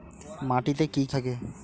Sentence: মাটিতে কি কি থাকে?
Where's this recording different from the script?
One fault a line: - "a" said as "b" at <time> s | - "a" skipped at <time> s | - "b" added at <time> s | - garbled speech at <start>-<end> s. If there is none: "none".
none